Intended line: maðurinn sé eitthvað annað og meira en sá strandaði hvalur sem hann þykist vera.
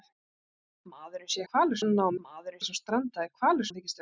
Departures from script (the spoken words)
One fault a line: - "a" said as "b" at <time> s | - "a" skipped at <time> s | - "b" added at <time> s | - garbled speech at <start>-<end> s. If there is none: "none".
- "eitthvað" said as "hvalur" at 1.5 s
- "meira" said as "maðurinn" at 2.3 s
- "sem" skipped at 3.7 s